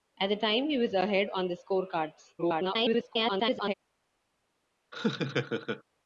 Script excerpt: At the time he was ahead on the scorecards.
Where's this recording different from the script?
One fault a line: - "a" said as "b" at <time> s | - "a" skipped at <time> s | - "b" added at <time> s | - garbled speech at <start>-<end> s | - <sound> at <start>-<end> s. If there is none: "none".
- garbled speech at 2.4-3.7 s
- laugh at 4.9-5.8 s